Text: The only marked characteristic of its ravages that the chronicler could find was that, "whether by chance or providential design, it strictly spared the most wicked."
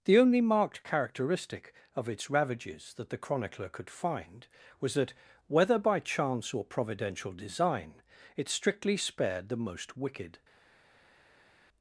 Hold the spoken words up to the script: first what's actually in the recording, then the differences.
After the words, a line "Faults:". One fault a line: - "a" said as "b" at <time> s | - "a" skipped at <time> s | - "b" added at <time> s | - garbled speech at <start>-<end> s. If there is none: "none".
The only marked characteristic of its ravages that the chronicler could find was that, "whether by chance or providential design, it strictly spared the most wicked."
Faults:
none